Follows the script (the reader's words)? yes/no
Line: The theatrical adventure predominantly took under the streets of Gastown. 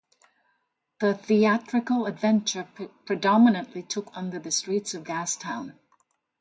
yes